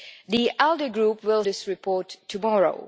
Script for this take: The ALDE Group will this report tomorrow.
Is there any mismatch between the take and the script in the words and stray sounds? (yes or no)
no